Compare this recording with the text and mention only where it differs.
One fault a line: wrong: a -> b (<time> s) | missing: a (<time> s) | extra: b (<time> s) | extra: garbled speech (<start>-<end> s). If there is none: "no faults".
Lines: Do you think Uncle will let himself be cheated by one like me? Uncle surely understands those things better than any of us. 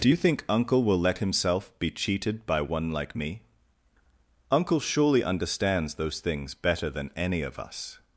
no faults